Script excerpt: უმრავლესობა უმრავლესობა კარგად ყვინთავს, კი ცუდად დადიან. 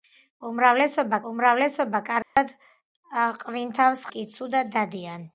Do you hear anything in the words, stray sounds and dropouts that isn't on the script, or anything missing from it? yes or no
yes